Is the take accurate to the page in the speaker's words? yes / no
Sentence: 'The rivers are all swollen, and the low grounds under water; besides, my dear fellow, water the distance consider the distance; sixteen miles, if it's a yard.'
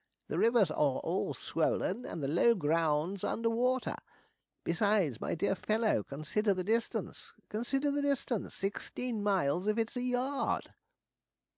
no